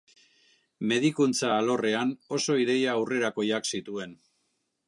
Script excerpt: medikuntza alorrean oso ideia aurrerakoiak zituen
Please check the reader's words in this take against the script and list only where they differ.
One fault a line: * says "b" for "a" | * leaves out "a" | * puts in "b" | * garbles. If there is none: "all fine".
all fine